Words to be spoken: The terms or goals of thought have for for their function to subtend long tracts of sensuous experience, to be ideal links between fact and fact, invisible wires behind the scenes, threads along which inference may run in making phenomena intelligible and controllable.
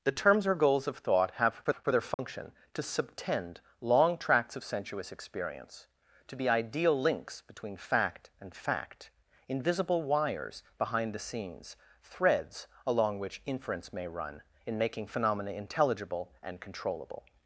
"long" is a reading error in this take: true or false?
false